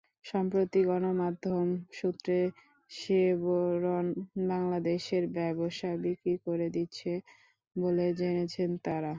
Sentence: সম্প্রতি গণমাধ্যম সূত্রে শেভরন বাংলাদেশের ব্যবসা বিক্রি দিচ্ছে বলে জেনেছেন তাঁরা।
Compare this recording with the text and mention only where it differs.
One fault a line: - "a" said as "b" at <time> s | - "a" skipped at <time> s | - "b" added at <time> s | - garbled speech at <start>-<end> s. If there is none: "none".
- "করে" added at 6.5 s